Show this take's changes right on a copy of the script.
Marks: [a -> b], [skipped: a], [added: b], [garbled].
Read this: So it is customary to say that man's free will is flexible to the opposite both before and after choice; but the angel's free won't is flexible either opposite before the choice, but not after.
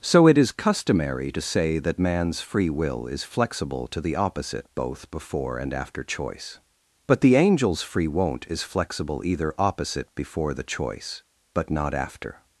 So it is customary to say that man's free will is flexible to the opposite both before and after choice; but the angel's free won't is flexible either opposite before the choice, but not after.